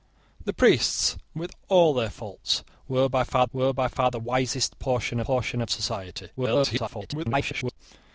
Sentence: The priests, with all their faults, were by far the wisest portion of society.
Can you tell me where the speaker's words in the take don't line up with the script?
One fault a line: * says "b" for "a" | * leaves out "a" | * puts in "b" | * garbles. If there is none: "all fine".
* puts in "were by far"
* puts in "portion"
* garbles